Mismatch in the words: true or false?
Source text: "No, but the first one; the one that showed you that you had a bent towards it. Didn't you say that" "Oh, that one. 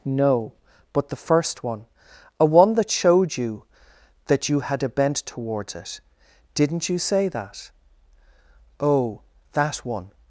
true